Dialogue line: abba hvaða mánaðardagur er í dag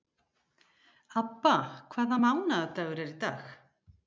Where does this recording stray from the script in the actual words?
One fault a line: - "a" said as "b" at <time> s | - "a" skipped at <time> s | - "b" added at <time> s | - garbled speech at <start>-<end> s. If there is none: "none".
none